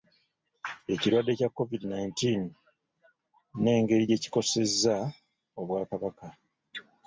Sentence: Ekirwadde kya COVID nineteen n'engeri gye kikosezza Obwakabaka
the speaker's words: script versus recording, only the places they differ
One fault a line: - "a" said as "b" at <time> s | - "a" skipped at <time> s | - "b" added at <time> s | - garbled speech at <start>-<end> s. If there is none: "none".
none